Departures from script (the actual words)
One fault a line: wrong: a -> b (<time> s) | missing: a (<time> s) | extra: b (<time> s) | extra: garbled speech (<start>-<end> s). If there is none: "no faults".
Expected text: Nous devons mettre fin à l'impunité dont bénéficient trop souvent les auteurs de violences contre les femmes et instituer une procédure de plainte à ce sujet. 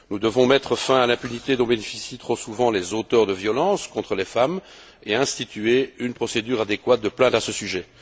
extra: adéquate (6.6 s)